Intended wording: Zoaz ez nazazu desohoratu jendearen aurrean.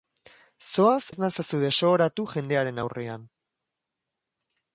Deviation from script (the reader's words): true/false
false